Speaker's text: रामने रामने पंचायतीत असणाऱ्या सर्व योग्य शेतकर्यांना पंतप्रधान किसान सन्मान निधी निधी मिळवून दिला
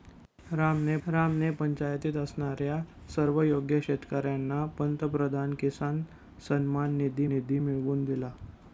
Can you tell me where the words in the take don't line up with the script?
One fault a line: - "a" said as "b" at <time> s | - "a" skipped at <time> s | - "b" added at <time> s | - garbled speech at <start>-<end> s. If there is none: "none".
none